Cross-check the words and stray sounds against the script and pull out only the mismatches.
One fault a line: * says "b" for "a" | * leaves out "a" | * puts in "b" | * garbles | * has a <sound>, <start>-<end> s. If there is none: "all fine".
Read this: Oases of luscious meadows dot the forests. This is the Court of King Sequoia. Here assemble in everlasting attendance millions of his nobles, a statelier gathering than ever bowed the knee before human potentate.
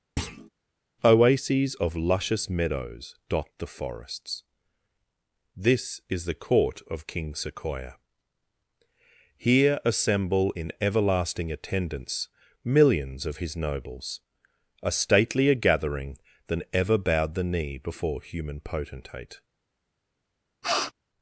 * has a thud, 0.2-0.5 s
* has a sniff, 20.6-20.9 s